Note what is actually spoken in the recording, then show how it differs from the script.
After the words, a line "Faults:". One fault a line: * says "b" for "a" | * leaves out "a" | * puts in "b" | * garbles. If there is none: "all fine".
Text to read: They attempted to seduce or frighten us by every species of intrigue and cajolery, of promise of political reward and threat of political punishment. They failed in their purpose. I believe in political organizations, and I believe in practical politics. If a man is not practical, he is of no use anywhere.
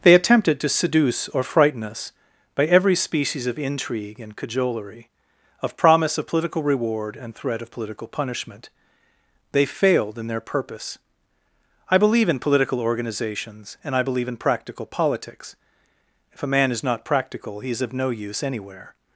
They attempted to seduce or frighten us by every species of intrigue and cajolery, of promise of political reward and threat of political punishment. They failed in their purpose. I believe in political organizations, and I believe in practical politics. If a man is not practical, he is of no use anywhere.
Faults:
all fine